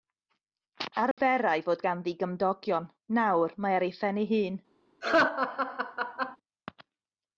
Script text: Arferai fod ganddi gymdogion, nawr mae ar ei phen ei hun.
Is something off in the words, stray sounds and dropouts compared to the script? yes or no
yes